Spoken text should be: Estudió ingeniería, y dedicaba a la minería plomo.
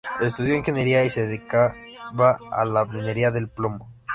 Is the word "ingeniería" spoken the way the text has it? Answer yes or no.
yes